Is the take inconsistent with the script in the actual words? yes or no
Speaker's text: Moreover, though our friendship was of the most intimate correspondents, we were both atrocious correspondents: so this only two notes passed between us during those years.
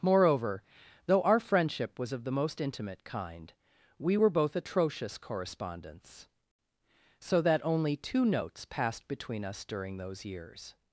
yes